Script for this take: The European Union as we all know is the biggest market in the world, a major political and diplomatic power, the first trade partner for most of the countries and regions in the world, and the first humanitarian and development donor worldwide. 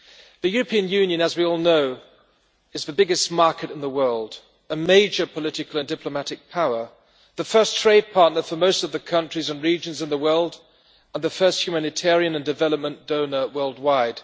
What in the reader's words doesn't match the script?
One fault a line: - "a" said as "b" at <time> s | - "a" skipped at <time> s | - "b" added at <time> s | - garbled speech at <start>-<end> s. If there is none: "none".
none